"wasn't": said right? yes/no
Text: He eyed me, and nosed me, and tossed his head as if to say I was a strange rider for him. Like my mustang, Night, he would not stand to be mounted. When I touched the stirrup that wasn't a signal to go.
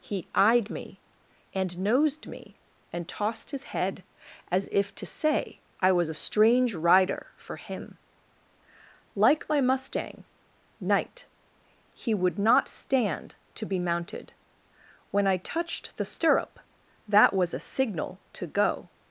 no